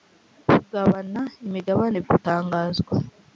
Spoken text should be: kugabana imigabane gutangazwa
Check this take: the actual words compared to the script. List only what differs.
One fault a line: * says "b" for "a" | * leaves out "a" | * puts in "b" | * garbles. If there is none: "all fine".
all fine